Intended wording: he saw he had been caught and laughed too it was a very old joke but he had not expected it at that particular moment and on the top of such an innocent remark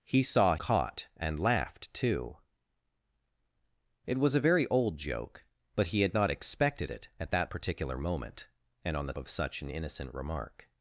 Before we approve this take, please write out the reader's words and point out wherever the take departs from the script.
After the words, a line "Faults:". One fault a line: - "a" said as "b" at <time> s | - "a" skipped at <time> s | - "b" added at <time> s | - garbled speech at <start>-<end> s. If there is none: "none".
he saw caught and laughed too it was a very old joke but he had not expected it at that particular moment and on the of such an innocent remark
Faults:
- "he had been" skipped at 0.6 s
- "top" skipped at 9.1 s